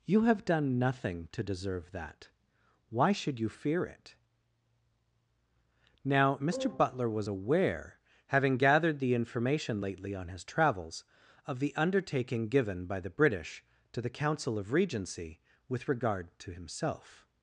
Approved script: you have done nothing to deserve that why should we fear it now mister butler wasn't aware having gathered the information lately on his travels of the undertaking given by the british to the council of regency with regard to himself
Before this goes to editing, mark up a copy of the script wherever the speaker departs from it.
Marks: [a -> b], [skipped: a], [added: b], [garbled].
you have done nothing to deserve that why should [we -> you] fear it now mister butler [wasn't -> was] aware having gathered the information lately on his travels of the undertaking given by the british to the council of regency with regard to himself